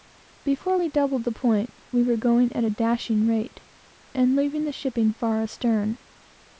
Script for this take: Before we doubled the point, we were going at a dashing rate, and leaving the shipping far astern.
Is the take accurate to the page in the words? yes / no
yes